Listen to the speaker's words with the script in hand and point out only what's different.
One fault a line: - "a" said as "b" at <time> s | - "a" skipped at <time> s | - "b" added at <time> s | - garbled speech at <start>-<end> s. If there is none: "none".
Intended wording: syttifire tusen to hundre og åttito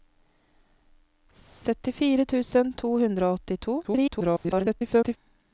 - garbled speech at 3.8-5.2 s